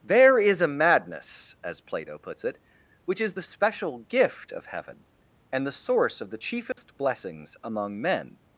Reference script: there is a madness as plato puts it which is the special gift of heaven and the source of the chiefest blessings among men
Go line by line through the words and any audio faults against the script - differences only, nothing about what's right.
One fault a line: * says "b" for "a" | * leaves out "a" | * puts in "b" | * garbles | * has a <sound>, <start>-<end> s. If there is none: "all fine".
* has a dropout, 6.7-6.8 s